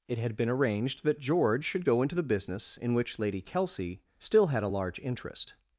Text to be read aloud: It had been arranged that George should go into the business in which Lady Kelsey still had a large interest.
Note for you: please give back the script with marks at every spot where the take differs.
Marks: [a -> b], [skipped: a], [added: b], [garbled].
It had been arranged that George should go into the business in which Lady Kelsey still had a large interest.